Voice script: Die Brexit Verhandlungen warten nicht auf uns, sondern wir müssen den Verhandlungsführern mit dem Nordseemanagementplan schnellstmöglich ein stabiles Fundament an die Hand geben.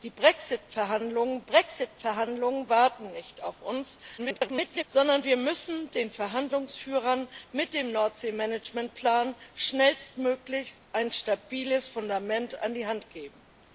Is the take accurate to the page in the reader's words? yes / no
no